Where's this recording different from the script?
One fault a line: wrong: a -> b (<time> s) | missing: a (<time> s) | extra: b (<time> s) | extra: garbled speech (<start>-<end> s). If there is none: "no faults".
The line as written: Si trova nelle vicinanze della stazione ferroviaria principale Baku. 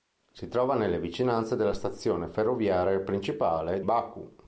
no faults